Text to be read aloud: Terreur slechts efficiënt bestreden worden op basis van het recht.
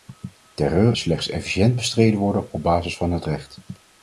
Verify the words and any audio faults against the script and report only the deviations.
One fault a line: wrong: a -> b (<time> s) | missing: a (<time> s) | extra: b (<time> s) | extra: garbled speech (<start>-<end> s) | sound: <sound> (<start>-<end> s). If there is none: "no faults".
no faults